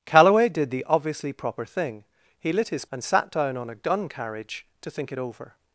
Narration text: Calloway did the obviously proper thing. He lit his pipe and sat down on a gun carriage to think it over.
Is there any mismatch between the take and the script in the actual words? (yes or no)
yes